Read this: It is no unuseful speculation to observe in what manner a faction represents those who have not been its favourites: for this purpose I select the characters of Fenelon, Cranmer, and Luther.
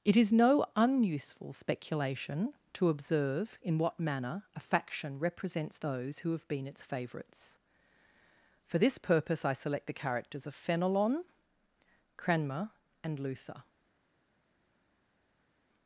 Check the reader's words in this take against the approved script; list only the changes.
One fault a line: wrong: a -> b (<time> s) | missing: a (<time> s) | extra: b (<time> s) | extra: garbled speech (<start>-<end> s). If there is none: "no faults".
missing: not (6.5 s)